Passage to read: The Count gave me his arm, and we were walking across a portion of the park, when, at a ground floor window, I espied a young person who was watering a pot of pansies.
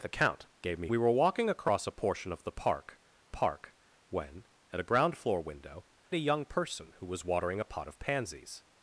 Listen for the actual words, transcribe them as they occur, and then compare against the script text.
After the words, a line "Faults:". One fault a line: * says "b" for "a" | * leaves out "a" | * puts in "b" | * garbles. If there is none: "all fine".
The Count gave me we were walking across a portion of the park park, when, at a ground floor window, a young person who was watering a pot of pansies.
Faults:
* leaves out "his arm and"
* puts in "park"
* leaves out "I espied"